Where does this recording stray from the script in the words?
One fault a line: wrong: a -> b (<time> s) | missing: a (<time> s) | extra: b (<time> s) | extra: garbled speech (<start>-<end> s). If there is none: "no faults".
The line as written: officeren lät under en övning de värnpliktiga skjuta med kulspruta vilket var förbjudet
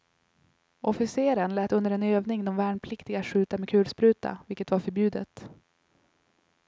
no faults